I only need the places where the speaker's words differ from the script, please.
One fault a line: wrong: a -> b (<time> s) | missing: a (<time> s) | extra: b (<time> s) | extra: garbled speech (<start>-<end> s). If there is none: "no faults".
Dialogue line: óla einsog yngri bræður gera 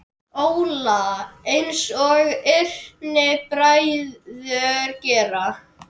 no faults